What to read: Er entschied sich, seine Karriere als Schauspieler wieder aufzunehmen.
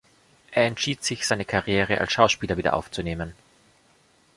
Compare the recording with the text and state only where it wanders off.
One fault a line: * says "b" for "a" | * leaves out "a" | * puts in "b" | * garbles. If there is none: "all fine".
all fine